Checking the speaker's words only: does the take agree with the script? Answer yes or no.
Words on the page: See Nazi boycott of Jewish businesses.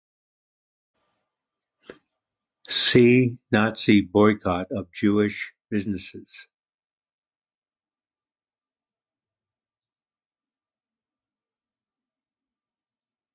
yes